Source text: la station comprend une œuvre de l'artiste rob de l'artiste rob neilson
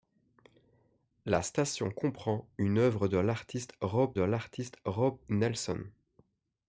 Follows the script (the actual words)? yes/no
yes